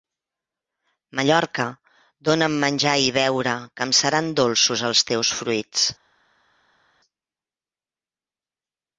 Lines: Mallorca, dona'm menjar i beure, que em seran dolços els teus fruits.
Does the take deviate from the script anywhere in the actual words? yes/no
no